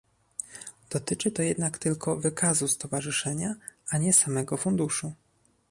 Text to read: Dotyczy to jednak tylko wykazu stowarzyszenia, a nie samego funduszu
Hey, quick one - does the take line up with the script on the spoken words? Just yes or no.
yes